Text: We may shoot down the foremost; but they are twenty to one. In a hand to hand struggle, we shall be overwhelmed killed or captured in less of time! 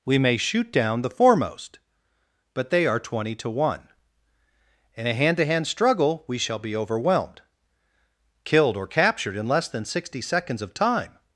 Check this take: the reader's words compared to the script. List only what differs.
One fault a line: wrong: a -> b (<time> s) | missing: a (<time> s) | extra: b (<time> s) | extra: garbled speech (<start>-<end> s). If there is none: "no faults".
extra: than sixty seconds (9.7 s)